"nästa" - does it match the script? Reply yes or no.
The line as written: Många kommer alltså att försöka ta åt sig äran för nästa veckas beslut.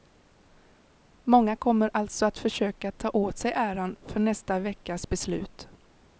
yes